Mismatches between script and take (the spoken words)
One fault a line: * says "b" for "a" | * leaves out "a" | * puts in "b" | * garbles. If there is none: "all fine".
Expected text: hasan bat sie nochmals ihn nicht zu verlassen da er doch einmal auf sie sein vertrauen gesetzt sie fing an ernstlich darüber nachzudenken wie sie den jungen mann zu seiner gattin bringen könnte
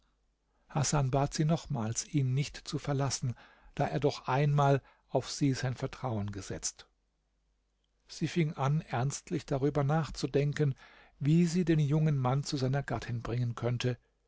all fine